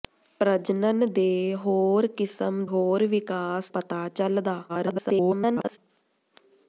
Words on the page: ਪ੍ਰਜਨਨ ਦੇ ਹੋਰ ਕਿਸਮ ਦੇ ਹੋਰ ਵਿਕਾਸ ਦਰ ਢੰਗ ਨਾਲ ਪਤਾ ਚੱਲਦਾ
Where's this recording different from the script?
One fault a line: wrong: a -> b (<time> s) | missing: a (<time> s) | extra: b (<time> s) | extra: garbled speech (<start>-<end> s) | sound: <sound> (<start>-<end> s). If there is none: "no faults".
missing: ਦੇ (2.6 s)
missing: ਦਰ ਢੰਗ ਨਾਲ (3.7 s)
extra: garbled speech (4.7-5.8 s)